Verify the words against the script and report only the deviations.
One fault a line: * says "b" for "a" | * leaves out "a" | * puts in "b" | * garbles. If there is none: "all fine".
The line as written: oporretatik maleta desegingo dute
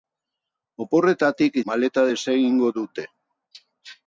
all fine